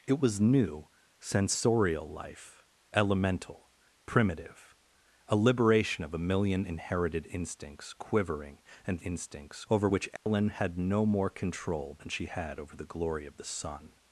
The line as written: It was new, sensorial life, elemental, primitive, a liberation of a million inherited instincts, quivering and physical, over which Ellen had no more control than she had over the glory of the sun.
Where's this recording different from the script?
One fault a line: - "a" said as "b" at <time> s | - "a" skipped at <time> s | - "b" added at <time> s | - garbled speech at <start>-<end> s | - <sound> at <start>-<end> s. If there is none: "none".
- "physical" said as "instincts" at 9.0 s
- dropout at 10.2-10.3 s